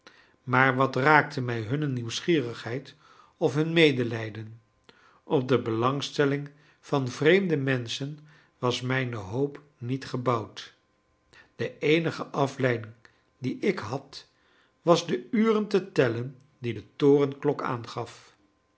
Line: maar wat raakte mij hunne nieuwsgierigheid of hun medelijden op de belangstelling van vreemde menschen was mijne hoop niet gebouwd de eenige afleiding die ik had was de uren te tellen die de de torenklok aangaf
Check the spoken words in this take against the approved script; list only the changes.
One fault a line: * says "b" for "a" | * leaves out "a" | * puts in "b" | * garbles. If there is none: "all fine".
* leaves out "de"